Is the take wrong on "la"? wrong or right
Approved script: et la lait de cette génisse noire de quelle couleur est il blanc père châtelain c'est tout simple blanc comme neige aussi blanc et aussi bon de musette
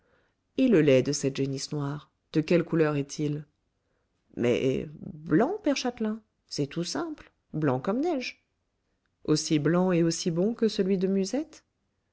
wrong